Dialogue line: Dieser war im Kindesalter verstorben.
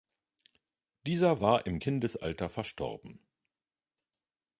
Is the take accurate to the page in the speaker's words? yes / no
yes